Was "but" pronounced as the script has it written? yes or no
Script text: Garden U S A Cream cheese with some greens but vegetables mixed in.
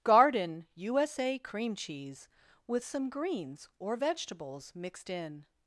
no